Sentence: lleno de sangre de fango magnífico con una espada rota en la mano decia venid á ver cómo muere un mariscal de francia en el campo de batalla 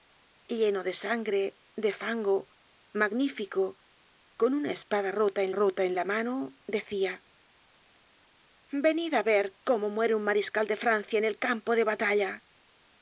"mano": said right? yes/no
yes